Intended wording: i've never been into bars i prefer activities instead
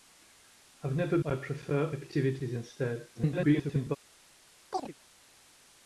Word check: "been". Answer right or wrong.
wrong